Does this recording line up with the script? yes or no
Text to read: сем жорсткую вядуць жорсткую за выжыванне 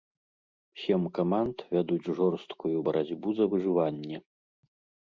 no